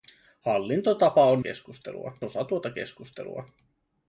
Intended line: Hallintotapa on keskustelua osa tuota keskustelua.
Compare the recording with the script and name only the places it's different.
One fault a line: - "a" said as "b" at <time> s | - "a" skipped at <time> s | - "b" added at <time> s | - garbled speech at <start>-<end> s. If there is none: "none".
none